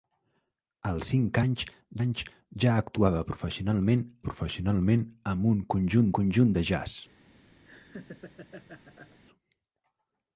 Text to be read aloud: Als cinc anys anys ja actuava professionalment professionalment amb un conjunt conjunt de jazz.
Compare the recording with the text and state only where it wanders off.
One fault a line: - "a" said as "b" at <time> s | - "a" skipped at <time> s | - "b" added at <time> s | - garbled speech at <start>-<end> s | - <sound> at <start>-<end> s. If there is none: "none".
- laugh at 7.6-9.2 s